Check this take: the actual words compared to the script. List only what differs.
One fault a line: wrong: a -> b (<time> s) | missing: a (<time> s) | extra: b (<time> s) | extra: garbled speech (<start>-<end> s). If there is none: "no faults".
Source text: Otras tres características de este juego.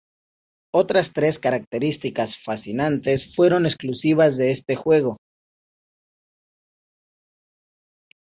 extra: fascinantes fueron exclusivas (2.4 s)